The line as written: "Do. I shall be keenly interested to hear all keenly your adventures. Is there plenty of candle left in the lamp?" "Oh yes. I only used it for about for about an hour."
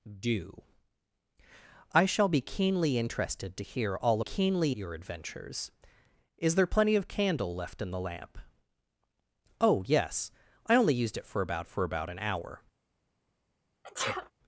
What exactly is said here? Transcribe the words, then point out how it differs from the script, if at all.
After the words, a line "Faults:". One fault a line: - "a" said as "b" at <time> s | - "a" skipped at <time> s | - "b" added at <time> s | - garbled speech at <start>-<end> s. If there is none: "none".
"Do. I shall be keenly interested to hear all keenly your adventures. Is there plenty of candle left in the lamp?" "Oh yes. I only used it for about for about an hour."
Faults:
none